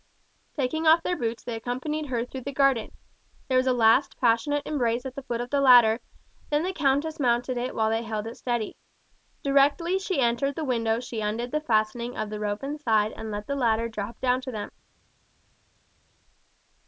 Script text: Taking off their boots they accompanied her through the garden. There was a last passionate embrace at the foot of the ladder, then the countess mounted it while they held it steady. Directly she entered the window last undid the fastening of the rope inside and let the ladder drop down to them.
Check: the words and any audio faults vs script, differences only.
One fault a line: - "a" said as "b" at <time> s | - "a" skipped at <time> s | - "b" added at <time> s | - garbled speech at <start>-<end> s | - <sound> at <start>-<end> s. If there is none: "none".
- "last" said as "she" at 11.0 s